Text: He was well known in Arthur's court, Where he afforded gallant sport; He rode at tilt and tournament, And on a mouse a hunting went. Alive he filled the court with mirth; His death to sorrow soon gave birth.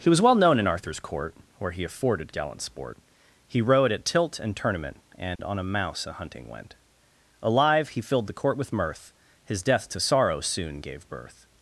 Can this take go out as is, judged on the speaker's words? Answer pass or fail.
pass